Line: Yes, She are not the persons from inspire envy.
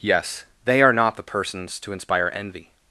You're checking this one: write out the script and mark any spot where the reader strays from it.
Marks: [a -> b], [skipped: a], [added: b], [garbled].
Yes, [She -> THEY] are not the persons [from -> to] inspire envy.